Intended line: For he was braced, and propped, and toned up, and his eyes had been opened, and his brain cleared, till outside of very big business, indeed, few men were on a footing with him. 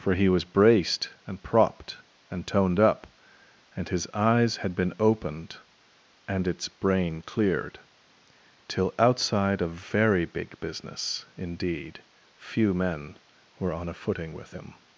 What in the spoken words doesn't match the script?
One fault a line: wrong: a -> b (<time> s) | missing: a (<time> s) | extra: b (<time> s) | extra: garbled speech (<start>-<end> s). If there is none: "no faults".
wrong: his -> its (6.5 s)